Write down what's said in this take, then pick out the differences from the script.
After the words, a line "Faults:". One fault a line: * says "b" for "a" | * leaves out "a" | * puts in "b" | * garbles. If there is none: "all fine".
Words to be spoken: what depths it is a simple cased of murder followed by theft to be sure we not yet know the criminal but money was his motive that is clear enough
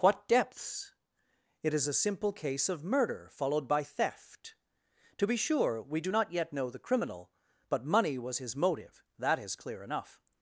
what depths it is a simple case of murder followed by theft to be sure we do not yet know the criminal but money was his motive that is clear enough
Faults:
* says "case" for "cased"
* puts in "do"